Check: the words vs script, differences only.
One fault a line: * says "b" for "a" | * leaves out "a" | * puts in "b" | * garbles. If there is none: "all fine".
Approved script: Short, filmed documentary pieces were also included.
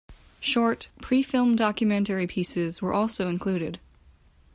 * puts in "pre"